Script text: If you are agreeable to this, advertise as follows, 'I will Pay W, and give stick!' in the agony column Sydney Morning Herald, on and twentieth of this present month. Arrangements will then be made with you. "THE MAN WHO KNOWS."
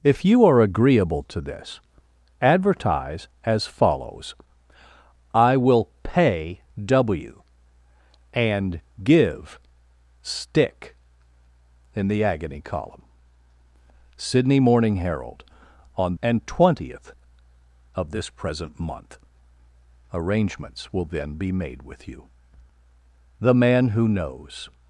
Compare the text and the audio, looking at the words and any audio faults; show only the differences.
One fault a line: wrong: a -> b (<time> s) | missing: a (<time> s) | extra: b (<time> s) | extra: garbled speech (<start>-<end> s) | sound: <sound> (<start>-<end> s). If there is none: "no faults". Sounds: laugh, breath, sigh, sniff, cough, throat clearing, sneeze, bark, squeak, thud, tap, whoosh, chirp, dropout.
no faults